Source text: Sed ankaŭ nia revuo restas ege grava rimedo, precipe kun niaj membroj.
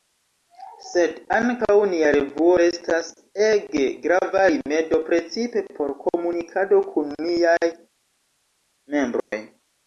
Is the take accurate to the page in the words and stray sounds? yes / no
no